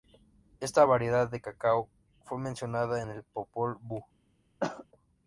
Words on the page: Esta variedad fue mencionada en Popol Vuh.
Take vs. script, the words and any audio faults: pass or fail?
fail